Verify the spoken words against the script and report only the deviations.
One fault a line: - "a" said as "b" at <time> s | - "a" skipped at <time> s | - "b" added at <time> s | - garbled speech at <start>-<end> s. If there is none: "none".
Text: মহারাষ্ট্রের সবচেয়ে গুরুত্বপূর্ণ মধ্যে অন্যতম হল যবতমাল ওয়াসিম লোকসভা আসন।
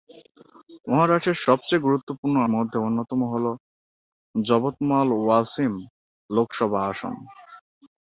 none